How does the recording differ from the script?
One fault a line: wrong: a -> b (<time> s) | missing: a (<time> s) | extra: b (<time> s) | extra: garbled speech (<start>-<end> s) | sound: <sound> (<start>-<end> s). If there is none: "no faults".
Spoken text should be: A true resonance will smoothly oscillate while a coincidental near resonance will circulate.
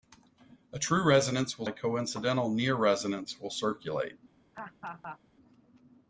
missing: smoothly oscillate while (1.7 s)
sound: laugh (4.5-5.2 s)